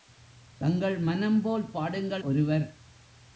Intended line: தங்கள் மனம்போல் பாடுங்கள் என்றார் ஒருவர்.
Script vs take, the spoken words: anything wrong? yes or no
yes